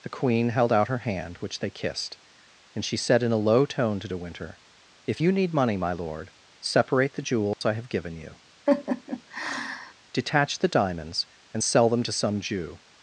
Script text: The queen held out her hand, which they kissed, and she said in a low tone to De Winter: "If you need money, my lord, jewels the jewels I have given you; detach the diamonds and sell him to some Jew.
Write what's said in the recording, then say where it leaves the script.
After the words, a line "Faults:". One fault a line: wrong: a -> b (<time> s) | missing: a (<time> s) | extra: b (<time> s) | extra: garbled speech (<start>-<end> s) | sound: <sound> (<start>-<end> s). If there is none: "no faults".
The queen held out her hand, which they kissed, and she said in a low tone to De Winter: "If you need money, my lord, separate the jewels I have given you; detach the diamonds and sell them to some Jew.
Faults:
wrong: jewels -> separate (6.6 s)
sound: dropout (7.5-7.6 s)
sound: laugh (8.7-9.9 s)
wrong: him -> them (11.9 s)